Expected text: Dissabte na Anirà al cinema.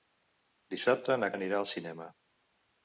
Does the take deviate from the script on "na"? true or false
false